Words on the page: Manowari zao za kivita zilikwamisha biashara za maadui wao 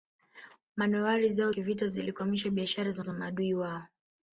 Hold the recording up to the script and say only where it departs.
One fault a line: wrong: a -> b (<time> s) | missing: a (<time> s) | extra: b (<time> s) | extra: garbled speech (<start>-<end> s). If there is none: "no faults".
missing: za (1.5 s)
extra: za (3.0 s)